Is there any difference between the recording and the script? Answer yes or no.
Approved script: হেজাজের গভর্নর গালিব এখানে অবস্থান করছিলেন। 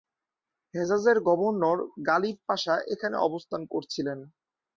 yes